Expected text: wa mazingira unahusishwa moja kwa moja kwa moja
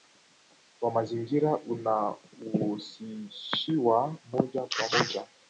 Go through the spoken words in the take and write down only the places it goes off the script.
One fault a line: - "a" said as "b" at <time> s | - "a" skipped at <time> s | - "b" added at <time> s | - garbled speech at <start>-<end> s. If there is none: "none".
- "kwa moja" skipped at 5.3 s